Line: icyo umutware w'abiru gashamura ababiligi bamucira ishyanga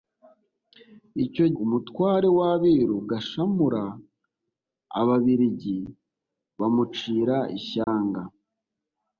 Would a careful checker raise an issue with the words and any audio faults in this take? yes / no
yes